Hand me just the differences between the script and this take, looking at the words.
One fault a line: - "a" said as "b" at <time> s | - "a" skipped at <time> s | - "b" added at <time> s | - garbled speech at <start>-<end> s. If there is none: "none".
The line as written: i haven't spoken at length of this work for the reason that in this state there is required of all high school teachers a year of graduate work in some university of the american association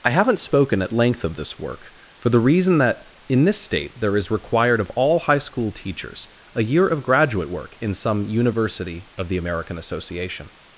none